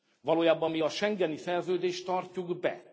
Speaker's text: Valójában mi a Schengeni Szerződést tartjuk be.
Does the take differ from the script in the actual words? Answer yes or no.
no